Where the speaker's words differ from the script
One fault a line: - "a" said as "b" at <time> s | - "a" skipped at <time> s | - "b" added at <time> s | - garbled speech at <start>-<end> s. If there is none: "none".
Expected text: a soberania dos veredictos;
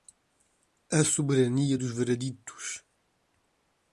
none